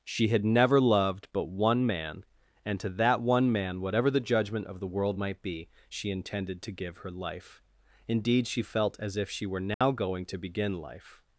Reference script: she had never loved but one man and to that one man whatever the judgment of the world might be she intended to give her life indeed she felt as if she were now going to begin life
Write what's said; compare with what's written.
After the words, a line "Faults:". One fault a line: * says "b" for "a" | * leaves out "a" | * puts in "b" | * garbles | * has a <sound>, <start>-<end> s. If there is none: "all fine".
she had never loved but one man and to that one man whatever the judgment of the world might be she intended to give her life indeed she felt as if she were now going to begin life
Faults:
* has a dropout, 9.7-9.8 s